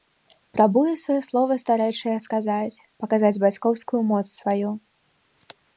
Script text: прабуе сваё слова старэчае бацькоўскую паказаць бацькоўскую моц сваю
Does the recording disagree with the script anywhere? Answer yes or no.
yes